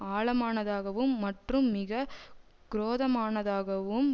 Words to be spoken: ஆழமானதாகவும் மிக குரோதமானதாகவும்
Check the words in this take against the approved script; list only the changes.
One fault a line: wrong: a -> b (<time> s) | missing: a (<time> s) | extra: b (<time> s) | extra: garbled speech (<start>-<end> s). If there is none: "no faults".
extra: மற்றும் (1.2 s)